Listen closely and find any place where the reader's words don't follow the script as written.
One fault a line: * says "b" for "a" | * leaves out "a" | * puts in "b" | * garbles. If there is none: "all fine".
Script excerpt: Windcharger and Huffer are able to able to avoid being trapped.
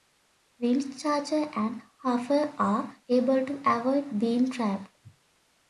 * leaves out "able to"